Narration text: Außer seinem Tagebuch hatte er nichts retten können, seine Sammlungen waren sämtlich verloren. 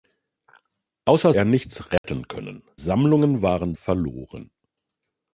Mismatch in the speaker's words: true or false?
true